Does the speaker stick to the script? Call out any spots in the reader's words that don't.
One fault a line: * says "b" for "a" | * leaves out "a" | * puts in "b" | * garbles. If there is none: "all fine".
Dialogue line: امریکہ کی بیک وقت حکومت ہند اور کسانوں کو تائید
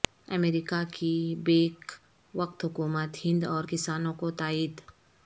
all fine